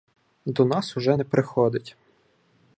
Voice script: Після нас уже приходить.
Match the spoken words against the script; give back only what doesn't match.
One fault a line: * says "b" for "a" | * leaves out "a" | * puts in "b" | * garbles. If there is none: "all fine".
* says "До" for "Після"
* puts in "не"